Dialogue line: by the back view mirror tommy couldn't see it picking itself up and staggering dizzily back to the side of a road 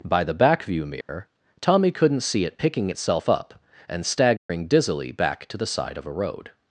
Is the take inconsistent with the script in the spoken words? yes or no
no